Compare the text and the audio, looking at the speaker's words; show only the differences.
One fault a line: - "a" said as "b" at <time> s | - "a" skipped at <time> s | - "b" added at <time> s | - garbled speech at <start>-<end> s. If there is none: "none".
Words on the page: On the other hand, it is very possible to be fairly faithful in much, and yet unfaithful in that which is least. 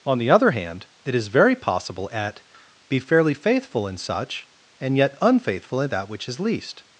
- "to" said as "at" at 2.1 s
- "much" said as "such" at 4.0 s